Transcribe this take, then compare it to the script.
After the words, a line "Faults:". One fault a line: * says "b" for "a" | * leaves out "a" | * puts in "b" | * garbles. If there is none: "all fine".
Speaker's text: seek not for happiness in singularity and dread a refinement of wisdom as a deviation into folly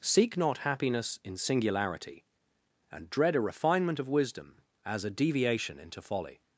seek not happiness in singularity and dread a refinement of wisdom as a deviation into folly
Faults:
* leaves out "for"